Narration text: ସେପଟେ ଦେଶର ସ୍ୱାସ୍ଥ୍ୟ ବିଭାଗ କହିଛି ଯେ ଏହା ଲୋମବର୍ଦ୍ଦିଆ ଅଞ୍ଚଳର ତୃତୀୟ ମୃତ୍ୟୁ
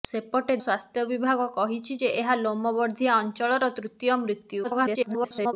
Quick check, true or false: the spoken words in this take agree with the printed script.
false